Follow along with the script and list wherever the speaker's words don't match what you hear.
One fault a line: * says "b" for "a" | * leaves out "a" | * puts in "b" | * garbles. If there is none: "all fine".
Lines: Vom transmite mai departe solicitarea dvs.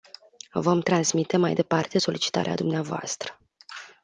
all fine